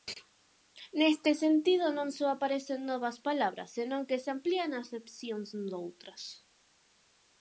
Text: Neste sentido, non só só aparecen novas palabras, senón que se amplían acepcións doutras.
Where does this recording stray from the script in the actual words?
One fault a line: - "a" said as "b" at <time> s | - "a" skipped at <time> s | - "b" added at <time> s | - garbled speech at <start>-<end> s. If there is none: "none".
- "só" skipped at 2.3 s